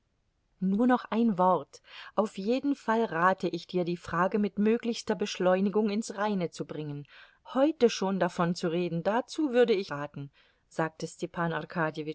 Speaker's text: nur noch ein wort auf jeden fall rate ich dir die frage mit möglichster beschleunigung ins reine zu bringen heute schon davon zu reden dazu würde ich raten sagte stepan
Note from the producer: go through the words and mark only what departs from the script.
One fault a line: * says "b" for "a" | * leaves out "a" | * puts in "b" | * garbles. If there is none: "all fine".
all fine